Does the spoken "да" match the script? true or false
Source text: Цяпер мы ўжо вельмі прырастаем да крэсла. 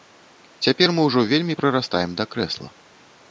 true